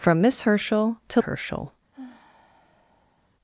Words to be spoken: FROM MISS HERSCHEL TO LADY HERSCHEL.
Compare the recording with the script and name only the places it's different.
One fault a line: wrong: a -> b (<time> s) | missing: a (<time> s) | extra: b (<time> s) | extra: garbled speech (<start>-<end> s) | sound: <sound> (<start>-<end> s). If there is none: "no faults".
missing: LADY (1.2 s)
sound: sigh (1.9-3.3 s)